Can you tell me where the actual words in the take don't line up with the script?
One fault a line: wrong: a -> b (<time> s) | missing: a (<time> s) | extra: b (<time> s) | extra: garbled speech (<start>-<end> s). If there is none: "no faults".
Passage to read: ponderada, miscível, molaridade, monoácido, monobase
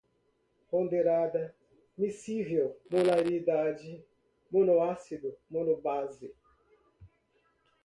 no faults